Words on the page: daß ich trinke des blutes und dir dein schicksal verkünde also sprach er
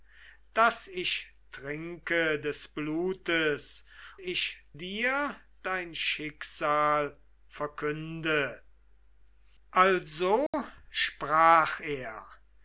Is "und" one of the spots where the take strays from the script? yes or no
yes